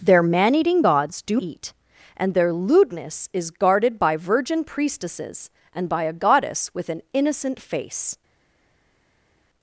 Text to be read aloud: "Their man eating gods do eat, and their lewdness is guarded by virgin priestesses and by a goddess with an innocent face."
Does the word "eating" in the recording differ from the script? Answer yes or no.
no